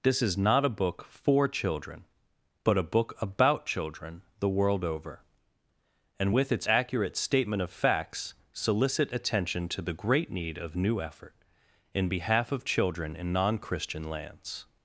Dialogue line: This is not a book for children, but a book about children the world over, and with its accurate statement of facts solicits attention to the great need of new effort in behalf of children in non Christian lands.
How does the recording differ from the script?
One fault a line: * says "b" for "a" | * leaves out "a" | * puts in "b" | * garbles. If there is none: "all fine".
* says "solicit" for "solicits"